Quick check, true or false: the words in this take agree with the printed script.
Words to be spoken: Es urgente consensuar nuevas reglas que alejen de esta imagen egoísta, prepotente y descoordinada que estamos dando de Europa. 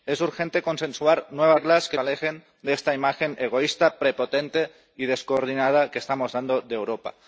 true